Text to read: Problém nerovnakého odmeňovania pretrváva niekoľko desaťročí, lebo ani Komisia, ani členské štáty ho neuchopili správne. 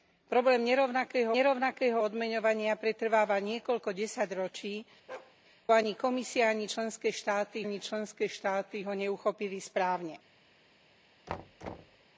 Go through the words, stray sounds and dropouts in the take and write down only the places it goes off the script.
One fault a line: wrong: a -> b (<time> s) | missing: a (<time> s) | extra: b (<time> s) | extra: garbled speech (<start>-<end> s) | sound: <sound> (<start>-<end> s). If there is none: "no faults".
extra: nerovnakého (1.3 s)
sound: bark (5.1-5.4 s)
wrong: lebo -> ani Komisia (5.7 s)
wrong: Komisia -> členské štáty (6.7 s)
sound: thud (11.3-12.0 s)